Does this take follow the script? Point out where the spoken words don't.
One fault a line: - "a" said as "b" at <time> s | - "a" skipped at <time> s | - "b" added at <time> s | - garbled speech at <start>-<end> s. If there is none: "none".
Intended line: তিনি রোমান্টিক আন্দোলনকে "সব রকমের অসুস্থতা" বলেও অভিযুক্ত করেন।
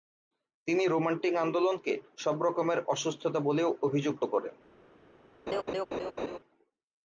none